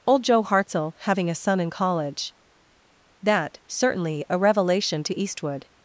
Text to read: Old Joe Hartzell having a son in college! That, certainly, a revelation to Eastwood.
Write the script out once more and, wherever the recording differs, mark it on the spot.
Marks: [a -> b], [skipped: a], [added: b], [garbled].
Old Joe Hartzell having a son in college! That, certainly, a revelation to Eastwood.